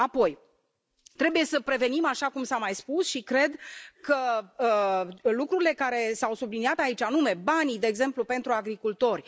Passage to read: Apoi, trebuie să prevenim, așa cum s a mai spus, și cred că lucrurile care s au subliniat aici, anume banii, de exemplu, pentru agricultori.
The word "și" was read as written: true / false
true